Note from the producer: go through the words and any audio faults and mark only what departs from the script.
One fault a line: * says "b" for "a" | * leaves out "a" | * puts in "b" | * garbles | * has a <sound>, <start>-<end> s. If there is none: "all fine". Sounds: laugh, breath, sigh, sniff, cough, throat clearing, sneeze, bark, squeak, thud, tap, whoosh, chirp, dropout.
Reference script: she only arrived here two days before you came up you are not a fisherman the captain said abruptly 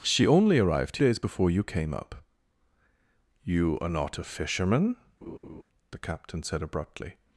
* leaves out "here two"
* has a laugh, 5.2-5.6 s